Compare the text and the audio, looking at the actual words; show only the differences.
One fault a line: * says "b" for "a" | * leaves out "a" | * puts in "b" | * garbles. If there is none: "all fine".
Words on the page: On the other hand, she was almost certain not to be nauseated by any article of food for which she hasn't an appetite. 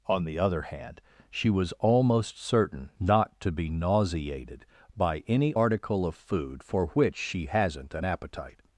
all fine